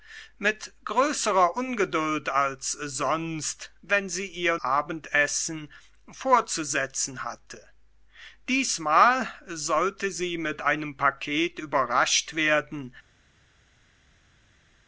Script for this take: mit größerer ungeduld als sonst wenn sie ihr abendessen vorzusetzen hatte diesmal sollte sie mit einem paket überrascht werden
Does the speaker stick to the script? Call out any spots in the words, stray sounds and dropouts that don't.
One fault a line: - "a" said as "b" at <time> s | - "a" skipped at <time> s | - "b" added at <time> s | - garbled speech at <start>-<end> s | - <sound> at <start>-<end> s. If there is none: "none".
none